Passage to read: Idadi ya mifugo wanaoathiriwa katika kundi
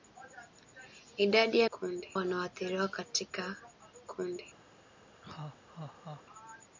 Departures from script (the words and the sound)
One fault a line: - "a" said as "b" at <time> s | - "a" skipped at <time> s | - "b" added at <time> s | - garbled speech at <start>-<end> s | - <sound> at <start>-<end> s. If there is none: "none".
- "mifugo" said as "kundi" at 1.7 s
- laugh at 5.2-6.2 s